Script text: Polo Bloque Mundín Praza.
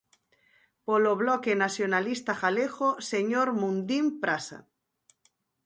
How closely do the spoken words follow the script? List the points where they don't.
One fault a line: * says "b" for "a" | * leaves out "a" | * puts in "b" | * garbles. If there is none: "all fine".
* puts in "Nacionalista Galego señor"